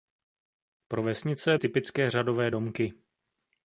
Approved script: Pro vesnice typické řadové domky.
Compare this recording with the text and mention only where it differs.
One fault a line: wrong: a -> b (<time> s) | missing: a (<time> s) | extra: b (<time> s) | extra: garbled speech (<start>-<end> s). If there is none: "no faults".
no faults